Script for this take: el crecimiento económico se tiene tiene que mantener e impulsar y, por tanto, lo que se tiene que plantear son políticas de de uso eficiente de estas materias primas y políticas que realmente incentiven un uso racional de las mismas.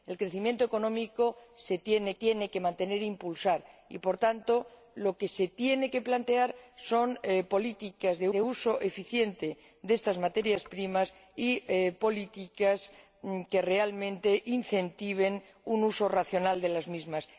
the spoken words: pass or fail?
pass